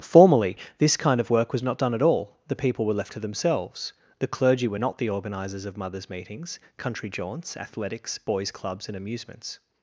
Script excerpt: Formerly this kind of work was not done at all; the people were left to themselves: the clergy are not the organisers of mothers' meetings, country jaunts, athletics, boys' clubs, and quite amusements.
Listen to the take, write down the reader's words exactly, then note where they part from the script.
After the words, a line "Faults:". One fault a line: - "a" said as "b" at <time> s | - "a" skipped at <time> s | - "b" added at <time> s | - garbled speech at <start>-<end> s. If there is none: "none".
Formerly this kind of work was not done at all; the people were left to themselves: the clergy were not the organisers of mothers' meetings, country jaunts, athletics, boys' clubs, and amusements.
Faults:
- "are" said as "were" at 4.7 s
- "quite" skipped at 9.0 s